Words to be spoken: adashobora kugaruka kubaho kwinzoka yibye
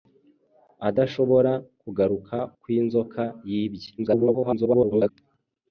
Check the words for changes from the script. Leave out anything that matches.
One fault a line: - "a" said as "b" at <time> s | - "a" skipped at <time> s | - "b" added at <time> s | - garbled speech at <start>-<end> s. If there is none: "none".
- "kubaho" skipped at 2.4 s
- garbled speech at 4.0-5.1 s